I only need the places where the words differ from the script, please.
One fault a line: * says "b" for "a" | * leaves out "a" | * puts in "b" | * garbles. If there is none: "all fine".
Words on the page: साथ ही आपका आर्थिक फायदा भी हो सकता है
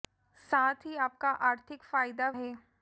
* leaves out "भी हो सकता"